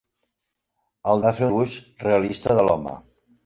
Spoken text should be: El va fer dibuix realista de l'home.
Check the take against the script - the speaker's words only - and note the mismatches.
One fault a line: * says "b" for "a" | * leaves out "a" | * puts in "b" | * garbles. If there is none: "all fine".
all fine